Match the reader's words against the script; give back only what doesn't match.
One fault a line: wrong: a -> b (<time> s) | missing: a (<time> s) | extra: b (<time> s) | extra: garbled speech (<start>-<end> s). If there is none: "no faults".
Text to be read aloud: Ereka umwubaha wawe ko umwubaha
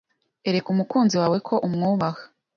wrong: umwubaha -> umukunzi (0.7 s)